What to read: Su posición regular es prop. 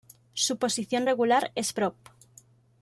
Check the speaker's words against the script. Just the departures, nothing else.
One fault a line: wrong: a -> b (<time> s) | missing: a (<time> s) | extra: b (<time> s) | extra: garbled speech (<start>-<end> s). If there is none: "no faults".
no faults